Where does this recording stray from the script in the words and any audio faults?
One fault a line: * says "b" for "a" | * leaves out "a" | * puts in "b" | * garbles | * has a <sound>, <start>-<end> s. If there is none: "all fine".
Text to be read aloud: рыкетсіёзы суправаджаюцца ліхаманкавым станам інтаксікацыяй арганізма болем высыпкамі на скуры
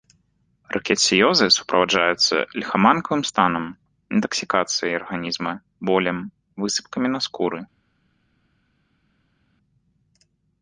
all fine